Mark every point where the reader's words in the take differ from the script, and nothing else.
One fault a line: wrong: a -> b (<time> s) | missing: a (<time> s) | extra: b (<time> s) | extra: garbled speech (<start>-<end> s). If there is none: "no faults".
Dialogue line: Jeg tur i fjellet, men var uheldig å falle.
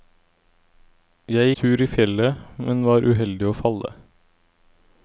no faults